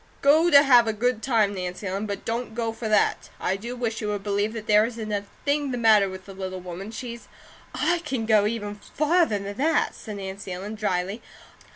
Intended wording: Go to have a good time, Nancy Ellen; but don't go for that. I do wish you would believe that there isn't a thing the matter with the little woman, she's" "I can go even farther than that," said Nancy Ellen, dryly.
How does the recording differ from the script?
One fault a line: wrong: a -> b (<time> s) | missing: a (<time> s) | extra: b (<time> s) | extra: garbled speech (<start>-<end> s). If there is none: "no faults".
no faults